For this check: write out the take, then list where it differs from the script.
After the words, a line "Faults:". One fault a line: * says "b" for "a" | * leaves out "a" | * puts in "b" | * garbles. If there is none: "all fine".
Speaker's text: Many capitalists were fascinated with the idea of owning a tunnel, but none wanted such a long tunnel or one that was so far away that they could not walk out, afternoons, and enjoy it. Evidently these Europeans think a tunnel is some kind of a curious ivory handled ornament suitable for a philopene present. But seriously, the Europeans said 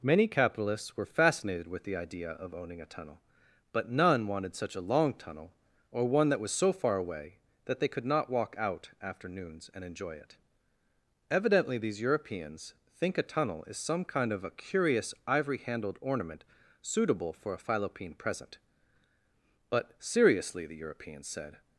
Many capitalists were fascinated with the idea of owning a tunnel, but none wanted such a long tunnel or one that was so far away that they could not walk out, afternoons, and enjoy it. Evidently these Europeans think a tunnel is some kind of a curious ivory handled ornament suitable for a philopene present. But seriously, the Europeans said
Faults:
all fine